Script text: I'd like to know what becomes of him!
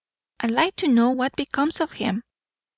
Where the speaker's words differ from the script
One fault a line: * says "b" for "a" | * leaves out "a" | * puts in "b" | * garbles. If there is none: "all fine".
all fine